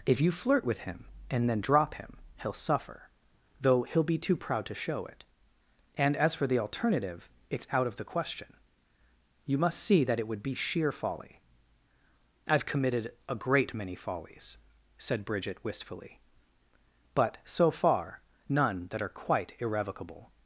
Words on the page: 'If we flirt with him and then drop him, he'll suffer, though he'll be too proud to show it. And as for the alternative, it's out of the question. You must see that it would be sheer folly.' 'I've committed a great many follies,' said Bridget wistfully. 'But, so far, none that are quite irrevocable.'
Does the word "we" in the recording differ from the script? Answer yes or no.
yes